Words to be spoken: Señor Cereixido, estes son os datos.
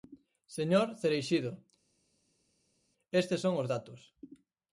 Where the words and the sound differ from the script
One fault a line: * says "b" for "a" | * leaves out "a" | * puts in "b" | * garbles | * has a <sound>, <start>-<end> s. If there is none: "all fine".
all fine